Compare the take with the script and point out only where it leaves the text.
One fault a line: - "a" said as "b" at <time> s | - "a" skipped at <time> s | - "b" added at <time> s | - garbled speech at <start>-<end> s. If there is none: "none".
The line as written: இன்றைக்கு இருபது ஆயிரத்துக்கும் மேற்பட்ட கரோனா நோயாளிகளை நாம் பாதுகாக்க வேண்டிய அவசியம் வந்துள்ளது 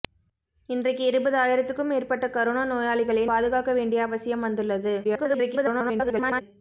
- "நாம்" skipped at 3.2 s
- garbled speech at 5.0-6.4 s